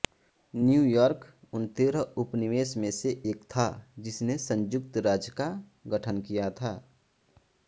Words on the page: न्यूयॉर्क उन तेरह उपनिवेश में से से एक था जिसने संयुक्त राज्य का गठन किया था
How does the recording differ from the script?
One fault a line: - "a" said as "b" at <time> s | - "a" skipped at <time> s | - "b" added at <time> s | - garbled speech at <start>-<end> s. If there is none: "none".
- "से" skipped at 3.1 s